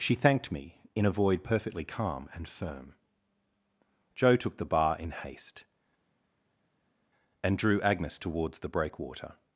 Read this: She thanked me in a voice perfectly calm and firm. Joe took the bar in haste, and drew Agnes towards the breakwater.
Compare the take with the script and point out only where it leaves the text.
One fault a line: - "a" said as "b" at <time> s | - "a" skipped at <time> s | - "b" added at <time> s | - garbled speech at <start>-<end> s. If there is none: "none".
- "voice" said as "void" at 1.1 s